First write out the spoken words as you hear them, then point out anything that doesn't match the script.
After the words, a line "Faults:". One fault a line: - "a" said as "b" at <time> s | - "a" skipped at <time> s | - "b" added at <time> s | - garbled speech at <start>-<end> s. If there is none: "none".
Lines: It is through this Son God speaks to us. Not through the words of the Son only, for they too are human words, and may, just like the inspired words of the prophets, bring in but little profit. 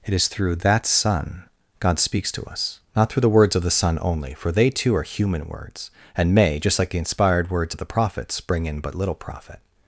It is through that Son God speaks to us. Not through the words of the Son only, for they too are human words, and may, just like the inspired words of the prophets, bring in but little profit.
Faults:
- "this" said as "that" at 0.6 s